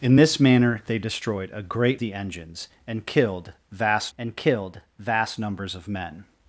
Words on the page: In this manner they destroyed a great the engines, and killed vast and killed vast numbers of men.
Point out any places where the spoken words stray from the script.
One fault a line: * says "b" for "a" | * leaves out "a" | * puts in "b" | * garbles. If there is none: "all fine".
all fine